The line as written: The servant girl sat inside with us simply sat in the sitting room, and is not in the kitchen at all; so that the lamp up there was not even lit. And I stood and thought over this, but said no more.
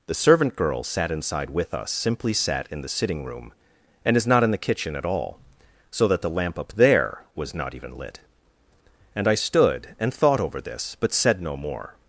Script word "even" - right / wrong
right